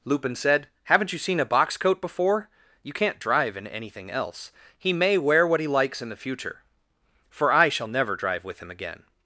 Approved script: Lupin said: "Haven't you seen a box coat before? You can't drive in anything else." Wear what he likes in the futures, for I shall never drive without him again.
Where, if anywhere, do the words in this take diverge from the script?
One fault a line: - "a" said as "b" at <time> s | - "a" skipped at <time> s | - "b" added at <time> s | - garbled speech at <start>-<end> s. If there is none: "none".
- "He may" added at 4.8 s
- "futures" said as "future" at 6.2 s
- "without" said as "with" at 8.4 s